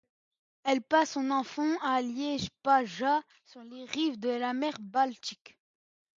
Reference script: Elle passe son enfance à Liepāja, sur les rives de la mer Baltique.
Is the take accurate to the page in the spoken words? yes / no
yes